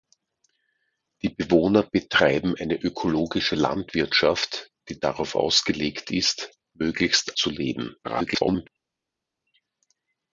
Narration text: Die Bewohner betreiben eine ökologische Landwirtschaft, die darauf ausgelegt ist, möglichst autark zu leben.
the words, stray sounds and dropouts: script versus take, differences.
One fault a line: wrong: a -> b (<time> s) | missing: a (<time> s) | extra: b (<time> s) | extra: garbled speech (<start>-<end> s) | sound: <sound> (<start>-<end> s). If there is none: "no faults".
missing: autark (7.4 s)
extra: garbled speech (8.0-8.7 s)